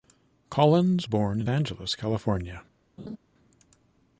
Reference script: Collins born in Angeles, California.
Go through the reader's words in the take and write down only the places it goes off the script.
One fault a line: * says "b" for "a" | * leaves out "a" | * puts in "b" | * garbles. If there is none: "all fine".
all fine